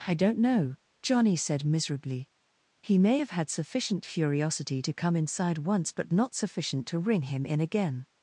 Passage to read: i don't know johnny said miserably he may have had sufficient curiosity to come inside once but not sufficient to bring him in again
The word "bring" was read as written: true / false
false